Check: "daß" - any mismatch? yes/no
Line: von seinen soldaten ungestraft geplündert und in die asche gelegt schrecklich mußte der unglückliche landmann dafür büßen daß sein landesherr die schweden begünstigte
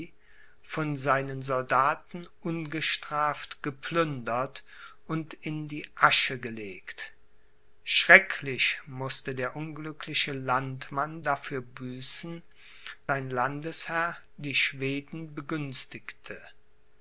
yes